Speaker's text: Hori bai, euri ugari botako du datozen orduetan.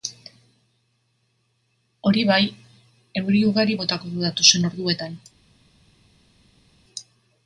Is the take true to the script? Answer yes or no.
yes